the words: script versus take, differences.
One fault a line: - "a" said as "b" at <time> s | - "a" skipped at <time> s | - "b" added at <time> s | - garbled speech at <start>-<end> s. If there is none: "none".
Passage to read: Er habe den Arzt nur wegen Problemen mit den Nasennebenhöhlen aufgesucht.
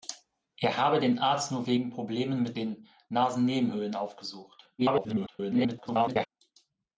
- garbled speech at 4.8-6.3 s